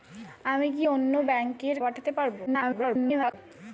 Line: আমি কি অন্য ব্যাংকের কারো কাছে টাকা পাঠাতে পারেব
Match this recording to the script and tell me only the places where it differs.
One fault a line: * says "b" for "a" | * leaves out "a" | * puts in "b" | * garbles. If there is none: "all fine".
* leaves out "কারো কাছে টাকা"
* garbles